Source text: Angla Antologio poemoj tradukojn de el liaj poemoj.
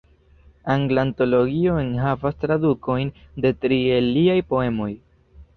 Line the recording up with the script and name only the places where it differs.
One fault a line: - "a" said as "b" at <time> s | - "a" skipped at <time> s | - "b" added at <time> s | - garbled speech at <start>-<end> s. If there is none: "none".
- "poemoj" said as "enhavas" at 1.8 s
- "tri" added at 3.7 s